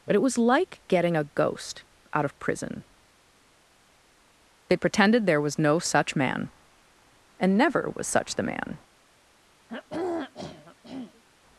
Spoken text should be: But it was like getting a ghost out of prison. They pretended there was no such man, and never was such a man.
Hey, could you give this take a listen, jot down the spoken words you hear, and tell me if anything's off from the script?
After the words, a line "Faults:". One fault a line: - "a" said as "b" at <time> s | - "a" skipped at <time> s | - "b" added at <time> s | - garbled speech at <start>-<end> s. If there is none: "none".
But it was like getting a ghost out of prison. They pretended there was no such man, and never was such the man.
Faults:
- "a" said as "the" at 8.3 s